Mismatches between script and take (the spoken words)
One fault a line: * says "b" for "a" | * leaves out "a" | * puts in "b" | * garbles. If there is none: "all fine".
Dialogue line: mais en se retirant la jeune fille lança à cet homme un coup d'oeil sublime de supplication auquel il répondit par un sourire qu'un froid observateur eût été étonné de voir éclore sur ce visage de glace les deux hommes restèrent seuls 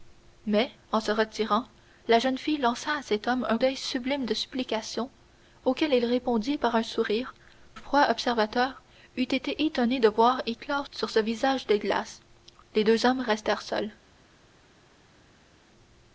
* leaves out "coup"
* leaves out "qu'un"